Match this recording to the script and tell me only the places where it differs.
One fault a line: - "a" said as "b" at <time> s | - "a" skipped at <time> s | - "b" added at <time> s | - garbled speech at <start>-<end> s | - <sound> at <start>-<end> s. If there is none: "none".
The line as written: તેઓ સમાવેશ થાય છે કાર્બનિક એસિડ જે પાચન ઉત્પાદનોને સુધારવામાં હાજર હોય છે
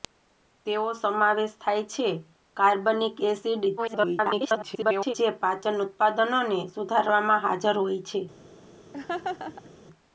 - garbled speech at 3.8-5.1 s
- laugh at 8.9-9.7 s